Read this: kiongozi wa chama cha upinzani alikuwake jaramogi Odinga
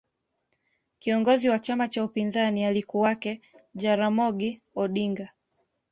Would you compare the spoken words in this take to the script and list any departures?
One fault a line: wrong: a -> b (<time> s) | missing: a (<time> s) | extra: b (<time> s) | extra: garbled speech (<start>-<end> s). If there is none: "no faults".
no faults